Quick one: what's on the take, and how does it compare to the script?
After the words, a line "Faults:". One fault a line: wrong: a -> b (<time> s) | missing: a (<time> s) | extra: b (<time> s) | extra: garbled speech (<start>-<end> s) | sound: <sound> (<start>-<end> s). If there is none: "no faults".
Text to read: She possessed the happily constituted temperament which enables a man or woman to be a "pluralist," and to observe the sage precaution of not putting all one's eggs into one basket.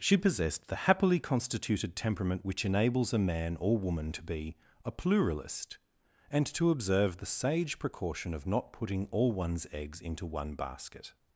She possessed the happily constituted temperament which enables a man or woman to be a "pluralist," and to observe the sage precaution of not putting all one's eggs into one basket.
Faults:
no faults